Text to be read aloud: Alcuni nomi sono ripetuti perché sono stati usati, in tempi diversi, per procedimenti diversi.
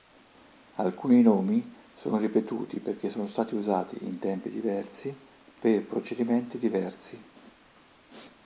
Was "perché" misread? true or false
false